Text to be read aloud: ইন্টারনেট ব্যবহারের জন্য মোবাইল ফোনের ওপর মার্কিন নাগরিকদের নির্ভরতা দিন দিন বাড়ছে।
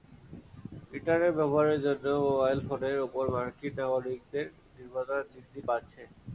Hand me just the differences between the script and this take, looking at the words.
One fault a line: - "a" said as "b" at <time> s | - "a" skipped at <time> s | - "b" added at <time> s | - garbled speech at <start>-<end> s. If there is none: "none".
none